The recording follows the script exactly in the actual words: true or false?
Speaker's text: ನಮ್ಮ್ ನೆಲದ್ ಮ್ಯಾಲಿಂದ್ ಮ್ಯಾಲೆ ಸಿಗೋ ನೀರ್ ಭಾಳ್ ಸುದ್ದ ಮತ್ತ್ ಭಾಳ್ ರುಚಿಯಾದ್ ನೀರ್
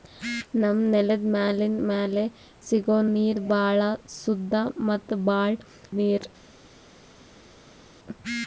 false